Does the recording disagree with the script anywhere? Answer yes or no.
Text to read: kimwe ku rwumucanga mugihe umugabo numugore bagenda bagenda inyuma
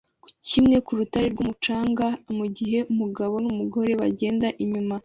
yes